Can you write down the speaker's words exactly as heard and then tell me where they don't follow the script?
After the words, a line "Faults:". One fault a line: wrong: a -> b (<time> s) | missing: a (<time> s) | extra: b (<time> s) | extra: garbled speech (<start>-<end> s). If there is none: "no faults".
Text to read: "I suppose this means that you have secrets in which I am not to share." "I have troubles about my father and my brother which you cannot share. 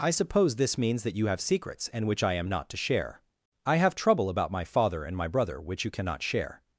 "I suppose this means that you have secrets and which I am not to share." "I have trouble about my father and my brother which you cannot share.
Faults:
wrong: in -> and (1.9 s)
wrong: troubles -> trouble (3.9 s)